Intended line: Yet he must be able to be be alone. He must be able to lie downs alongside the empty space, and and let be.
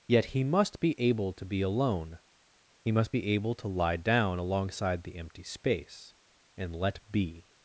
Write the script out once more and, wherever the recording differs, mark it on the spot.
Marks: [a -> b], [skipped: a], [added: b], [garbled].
Yet he must be able to be [skipped: be] alone. He must be able to lie [downs -> down] alongside the empty space, and [skipped: and] let be.